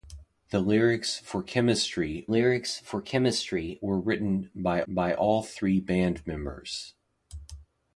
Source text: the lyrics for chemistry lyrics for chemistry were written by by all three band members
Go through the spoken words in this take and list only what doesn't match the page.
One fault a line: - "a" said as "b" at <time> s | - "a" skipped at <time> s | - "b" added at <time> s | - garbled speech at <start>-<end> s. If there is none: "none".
none